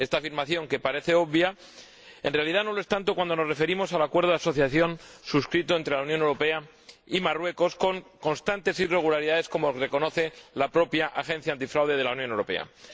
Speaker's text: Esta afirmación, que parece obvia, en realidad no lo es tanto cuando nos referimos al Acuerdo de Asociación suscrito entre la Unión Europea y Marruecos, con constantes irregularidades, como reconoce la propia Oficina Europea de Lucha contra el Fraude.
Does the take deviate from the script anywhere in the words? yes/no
no